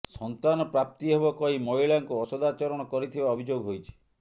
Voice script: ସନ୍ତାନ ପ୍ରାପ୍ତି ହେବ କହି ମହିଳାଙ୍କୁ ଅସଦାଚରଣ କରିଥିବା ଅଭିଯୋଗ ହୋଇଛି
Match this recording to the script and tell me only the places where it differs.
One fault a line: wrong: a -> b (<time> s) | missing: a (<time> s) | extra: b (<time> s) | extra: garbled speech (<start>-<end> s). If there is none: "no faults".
no faults